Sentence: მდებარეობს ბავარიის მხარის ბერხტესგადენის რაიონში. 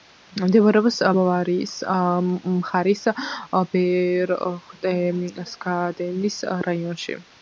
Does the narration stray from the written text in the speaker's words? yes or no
no